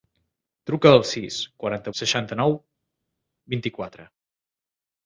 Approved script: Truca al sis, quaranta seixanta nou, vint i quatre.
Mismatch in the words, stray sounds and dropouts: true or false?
false